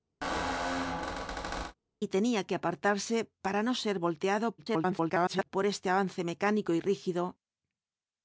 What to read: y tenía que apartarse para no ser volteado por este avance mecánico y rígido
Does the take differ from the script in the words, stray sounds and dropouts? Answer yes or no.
yes